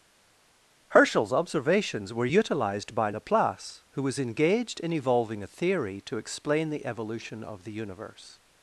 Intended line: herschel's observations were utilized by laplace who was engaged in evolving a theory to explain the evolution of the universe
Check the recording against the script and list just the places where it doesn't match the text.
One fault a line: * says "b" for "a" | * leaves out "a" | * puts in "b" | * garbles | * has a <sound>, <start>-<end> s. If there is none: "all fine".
all fine